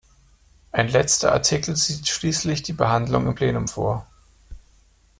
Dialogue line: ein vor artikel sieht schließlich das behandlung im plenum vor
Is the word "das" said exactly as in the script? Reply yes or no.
no